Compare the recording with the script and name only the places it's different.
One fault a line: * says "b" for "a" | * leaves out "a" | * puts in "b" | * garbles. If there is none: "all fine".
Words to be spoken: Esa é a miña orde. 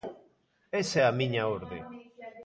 all fine